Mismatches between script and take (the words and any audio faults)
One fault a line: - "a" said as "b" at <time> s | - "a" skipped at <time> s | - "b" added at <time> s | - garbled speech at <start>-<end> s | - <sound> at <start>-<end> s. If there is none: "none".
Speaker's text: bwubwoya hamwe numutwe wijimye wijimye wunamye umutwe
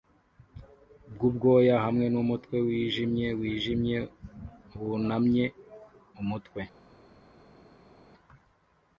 none